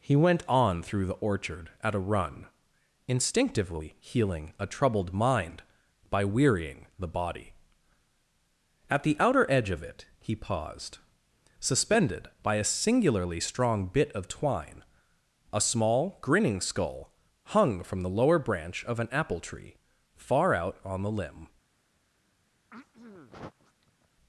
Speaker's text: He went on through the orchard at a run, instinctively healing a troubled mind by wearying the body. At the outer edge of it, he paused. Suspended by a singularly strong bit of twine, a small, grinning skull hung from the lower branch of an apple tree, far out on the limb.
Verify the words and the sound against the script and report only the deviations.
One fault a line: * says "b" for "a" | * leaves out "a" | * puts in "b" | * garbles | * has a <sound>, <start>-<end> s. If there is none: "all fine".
* has a throat clearing, 22.7-24.1 s